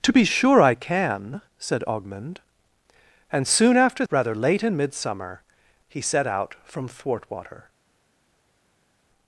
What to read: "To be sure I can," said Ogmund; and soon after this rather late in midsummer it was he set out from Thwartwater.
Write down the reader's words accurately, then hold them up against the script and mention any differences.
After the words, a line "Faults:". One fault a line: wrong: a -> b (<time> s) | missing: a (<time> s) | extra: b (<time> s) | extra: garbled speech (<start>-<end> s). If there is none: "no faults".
"To be sure I can," said Ogmund; and soon after rather late in midsummer he set out from Thwartwater.
Faults:
missing: this (4.0 s)
missing: it was (5.4 s)